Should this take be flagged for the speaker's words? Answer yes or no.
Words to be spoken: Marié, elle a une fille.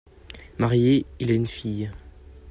yes